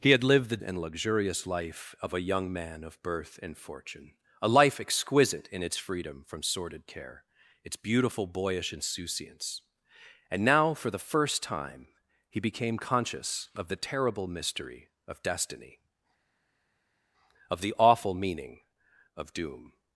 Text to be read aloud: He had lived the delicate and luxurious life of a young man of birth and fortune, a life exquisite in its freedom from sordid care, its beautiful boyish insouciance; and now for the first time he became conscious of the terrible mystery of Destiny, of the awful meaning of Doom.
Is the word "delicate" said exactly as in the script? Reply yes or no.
no